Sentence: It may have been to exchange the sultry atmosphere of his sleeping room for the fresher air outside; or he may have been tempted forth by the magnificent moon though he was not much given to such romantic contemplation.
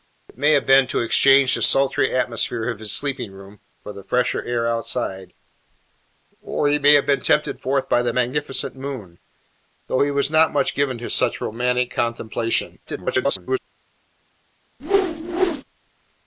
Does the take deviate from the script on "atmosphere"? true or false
false